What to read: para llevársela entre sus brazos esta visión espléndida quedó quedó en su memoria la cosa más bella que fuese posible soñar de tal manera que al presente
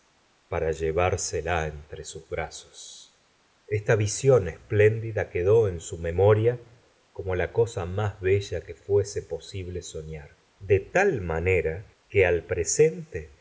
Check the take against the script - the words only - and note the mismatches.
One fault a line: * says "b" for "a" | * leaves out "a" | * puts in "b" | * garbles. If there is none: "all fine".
* leaves out "quedó"
* puts in "como"